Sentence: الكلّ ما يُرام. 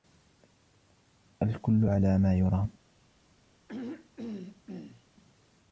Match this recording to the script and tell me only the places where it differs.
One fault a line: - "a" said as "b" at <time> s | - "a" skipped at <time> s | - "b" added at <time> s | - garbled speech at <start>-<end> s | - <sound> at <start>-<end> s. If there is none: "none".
- "على" added at 1.8 s
- throat clearing at 3.7-5.0 s